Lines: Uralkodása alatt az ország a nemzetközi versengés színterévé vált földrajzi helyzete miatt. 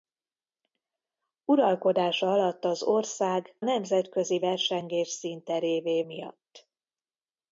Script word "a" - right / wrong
wrong